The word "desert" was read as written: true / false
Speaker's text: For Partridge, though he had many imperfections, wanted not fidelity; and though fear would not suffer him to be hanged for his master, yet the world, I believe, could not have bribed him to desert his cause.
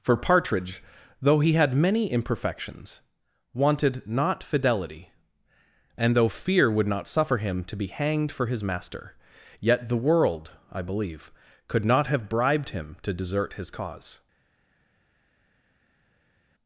true